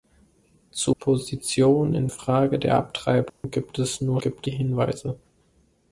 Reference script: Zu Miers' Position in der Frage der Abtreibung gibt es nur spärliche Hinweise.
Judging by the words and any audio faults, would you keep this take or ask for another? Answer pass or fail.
fail